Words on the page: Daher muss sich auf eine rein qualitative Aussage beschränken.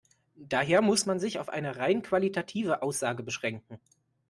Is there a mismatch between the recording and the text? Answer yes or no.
yes